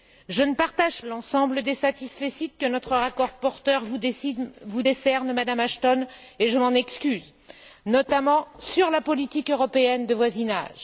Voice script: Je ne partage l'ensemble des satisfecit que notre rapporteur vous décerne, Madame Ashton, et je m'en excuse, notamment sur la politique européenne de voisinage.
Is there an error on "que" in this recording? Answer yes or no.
no